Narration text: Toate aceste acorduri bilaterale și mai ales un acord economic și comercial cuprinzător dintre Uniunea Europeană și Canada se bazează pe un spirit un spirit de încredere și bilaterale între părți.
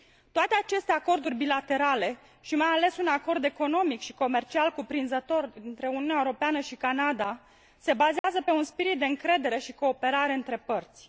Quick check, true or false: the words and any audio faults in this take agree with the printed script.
false